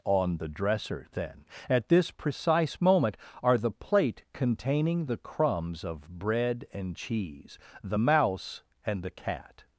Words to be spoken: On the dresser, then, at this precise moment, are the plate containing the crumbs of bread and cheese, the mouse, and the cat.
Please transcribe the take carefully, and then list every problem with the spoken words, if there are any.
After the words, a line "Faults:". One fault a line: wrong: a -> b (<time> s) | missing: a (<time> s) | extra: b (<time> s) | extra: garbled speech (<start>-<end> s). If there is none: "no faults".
On the dresser, then, at this precise moment, are the plate containing the crumbs of bread and cheese, the mouse, and the cat.
Faults:
no faults